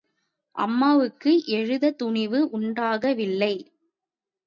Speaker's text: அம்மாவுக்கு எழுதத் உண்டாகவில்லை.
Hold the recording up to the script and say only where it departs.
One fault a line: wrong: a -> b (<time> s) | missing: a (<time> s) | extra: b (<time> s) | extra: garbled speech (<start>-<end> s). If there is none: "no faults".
extra: துணிவு (2.0 s)